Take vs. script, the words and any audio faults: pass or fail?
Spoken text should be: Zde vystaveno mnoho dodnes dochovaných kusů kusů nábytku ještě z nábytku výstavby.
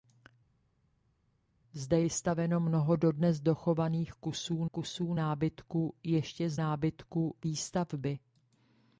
pass